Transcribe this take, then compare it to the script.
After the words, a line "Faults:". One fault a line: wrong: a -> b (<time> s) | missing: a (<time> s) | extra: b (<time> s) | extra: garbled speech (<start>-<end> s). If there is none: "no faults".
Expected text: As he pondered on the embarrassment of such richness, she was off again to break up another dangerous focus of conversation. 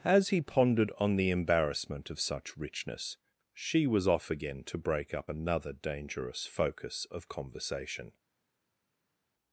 As he pondered on the embarrassment of such richness, she was off again to break up another dangerous focus of conversation.
Faults:
no faults